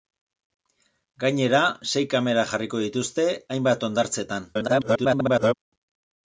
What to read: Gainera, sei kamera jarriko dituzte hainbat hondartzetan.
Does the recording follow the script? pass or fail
fail